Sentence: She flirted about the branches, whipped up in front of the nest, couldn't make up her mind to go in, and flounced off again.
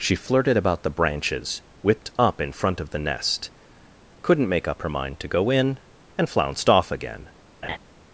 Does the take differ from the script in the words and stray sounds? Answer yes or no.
yes